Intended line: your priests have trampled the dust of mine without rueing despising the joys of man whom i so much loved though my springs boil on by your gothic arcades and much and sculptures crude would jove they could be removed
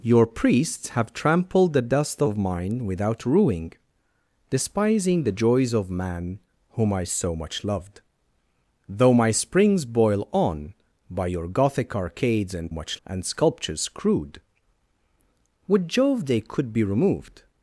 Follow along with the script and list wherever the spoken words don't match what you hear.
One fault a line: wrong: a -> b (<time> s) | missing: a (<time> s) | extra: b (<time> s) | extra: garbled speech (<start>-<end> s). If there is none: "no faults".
no faults